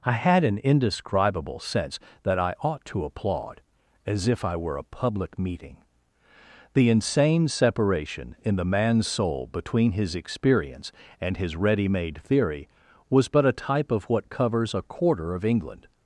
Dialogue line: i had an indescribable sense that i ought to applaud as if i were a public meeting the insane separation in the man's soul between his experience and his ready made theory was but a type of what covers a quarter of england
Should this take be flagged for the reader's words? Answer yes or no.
no